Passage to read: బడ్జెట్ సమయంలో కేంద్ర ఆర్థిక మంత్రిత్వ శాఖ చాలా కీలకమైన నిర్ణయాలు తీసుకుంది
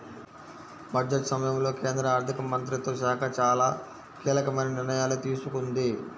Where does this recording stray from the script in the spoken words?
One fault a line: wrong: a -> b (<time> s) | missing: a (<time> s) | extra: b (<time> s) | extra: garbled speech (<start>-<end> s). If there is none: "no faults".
no faults